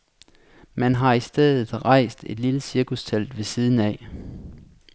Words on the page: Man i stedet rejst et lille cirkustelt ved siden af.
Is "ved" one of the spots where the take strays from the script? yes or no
no